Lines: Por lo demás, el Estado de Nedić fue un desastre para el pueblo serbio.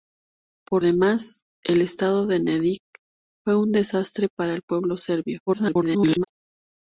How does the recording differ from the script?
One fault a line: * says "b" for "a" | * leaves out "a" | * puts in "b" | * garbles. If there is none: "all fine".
* leaves out "lo"
* garbles